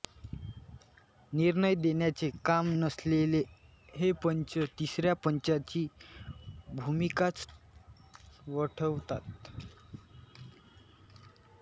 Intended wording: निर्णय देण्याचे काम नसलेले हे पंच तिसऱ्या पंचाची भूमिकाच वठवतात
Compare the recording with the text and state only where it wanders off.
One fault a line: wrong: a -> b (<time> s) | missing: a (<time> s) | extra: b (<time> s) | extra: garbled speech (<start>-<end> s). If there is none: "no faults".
no faults